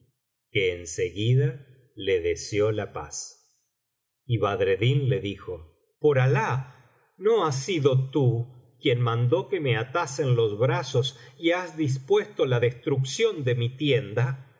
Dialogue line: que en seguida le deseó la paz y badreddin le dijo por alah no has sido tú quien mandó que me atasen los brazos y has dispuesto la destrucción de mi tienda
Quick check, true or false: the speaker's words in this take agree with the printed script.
true